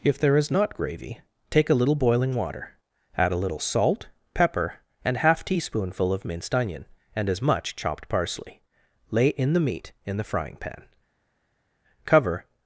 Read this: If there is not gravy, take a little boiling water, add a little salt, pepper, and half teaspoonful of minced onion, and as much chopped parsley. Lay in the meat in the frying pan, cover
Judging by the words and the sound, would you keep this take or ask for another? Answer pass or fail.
pass